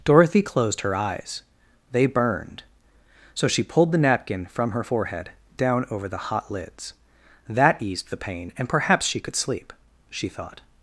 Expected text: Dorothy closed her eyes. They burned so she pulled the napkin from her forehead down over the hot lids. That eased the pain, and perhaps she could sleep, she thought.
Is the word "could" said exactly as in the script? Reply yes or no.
yes